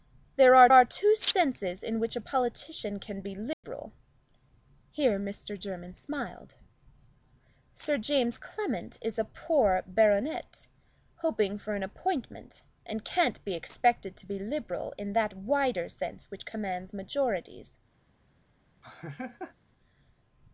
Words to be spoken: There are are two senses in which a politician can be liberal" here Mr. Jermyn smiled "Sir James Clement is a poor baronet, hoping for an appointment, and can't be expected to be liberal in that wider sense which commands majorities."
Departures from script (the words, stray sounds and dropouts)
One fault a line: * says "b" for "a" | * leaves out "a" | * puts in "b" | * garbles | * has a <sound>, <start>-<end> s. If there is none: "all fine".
* has a dropout, 3.5-3.6 s
* has a laugh, 18.8-19.5 s